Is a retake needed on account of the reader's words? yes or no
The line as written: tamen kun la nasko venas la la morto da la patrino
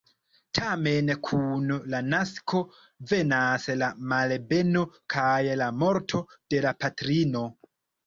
yes